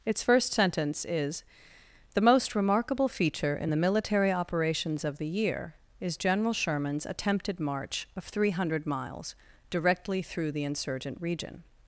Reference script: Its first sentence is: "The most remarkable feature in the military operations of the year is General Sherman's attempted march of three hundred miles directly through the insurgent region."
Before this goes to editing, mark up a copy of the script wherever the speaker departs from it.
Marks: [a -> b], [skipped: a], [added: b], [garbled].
Its first sentence is: "The most remarkable feature in the military operations of the year is General Sherman's attempted march of three hundred miles directly through the insurgent region."